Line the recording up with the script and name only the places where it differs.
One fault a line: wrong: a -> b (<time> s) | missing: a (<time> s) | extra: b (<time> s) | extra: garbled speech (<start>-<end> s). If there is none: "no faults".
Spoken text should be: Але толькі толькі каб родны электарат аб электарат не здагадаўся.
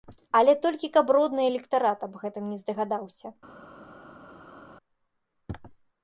missing: толькі (0.9 s)
wrong: электарат -> гэтым (2.2 s)